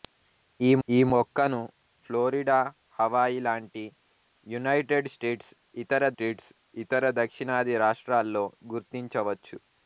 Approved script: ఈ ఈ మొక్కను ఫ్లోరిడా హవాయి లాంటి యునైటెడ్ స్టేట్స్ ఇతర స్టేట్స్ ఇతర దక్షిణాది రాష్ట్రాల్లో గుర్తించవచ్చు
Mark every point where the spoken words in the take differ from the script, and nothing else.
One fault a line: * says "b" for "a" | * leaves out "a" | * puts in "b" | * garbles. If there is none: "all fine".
all fine